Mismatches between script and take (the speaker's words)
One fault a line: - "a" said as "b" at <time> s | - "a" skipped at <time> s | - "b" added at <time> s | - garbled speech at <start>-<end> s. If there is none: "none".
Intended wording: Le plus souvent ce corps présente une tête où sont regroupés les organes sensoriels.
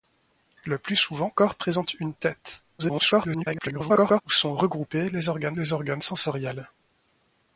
- "ce" skipped at 1.3 s
- garbled speech at 2.8-4.2 s
- "les organes" added at 5.5 s